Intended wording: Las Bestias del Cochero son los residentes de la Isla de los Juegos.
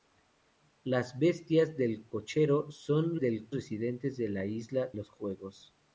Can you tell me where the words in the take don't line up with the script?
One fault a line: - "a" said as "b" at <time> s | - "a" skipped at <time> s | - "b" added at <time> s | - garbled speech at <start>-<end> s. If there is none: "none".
- "los" said as "del" at 3.2 s
- "de" skipped at 4.9 s